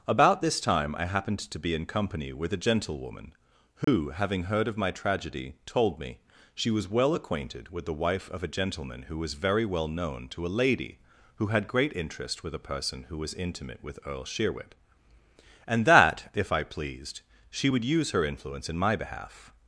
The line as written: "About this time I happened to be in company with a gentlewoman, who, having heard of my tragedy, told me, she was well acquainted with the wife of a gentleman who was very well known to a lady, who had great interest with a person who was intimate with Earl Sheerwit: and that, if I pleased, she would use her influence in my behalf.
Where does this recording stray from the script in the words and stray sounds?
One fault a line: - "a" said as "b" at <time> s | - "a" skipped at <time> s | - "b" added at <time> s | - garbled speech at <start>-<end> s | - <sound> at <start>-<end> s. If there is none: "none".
- dropout at 3.8-3.9 s